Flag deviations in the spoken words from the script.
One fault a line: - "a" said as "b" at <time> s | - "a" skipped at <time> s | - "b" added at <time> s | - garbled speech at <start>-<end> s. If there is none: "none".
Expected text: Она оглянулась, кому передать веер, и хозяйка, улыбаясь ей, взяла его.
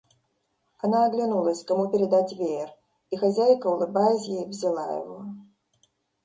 none